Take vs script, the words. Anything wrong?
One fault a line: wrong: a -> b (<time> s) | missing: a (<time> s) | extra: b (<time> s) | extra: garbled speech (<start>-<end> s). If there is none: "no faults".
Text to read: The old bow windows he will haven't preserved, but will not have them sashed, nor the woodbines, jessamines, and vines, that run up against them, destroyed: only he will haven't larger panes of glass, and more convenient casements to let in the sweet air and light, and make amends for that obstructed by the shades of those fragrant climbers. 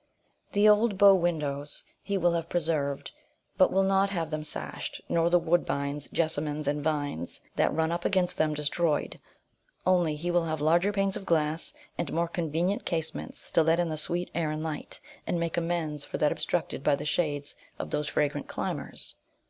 wrong: haven't -> have (2.3 s)
wrong: haven't -> have (10.4 s)